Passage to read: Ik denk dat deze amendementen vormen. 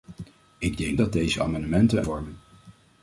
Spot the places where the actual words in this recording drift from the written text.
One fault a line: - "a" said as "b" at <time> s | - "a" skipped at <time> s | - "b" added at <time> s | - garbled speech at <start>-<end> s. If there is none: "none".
none